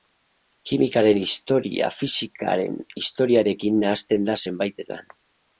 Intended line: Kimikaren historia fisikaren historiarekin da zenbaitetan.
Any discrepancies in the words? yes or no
yes